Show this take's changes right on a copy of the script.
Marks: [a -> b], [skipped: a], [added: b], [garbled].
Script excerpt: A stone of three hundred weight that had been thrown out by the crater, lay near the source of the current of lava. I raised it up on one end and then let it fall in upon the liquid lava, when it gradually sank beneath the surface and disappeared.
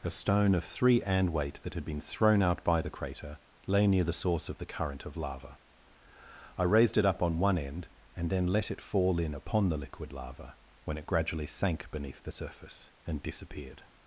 A stone of three [hundred -> and] weight that had been thrown out by the crater, lay near the source of the current of lava. I raised it up on one end and then let it fall in upon the liquid lava, when it gradually sank beneath the surface and disappeared.